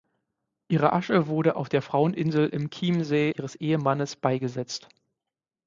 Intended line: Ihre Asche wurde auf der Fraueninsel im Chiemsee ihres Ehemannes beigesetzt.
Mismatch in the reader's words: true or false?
false